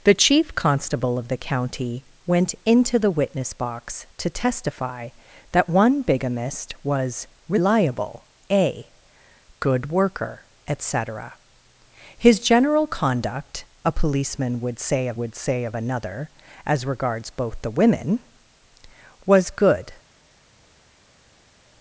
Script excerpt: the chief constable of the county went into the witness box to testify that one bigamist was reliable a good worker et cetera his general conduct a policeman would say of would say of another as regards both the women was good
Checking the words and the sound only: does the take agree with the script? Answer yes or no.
yes